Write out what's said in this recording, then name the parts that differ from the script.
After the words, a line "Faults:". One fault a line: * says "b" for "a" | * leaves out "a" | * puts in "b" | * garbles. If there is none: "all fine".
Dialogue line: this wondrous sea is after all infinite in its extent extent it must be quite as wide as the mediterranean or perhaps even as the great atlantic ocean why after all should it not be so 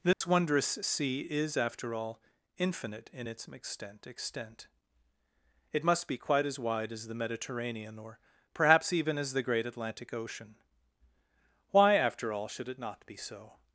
this wondrous sea is after all infinite in its extent extent it must be quite as wide as the mediterranean or perhaps even as the great atlantic ocean why after all should it not be so
Faults:
all fine